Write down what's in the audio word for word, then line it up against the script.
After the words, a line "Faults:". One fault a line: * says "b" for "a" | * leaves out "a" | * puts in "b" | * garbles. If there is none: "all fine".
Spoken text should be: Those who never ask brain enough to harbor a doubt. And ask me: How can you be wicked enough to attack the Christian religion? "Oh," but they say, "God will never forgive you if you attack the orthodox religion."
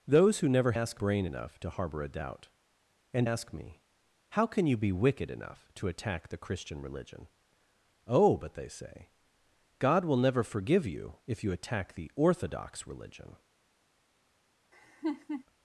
Those who never ask brain enough to harbor a doubt. And ask me: How can you be wicked enough to attack the Christian religion? "Oh," but they say, "God will never forgive you if you attack the orthodox religion."
Faults:
all fine